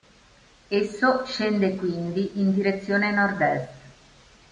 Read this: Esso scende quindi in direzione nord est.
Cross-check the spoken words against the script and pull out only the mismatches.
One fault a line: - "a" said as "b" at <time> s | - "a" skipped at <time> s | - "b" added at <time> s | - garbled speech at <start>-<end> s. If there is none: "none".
none